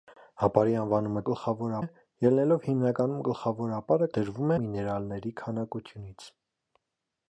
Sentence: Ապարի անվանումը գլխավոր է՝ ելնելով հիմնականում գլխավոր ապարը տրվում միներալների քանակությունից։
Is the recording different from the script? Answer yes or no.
no